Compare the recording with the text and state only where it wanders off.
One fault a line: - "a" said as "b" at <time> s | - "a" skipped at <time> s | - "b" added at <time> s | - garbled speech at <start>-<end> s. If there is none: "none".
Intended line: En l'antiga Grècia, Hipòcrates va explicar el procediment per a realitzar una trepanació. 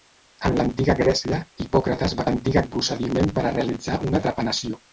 - "explicar" said as "l'antiga" at 2.3 s